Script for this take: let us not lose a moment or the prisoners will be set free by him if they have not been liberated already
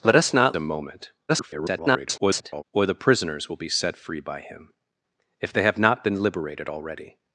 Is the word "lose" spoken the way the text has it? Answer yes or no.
no